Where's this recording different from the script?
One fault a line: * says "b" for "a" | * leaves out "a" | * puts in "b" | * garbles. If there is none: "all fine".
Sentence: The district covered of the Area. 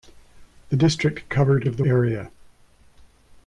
all fine